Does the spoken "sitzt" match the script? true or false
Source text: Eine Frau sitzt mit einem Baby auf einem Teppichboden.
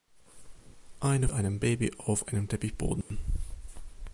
false